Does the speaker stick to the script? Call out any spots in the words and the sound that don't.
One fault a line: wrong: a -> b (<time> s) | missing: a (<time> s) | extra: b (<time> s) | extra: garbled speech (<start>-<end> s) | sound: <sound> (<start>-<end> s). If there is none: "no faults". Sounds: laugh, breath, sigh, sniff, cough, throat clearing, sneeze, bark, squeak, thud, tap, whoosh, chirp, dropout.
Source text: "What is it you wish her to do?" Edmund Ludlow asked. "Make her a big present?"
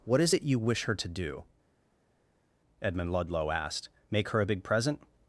no faults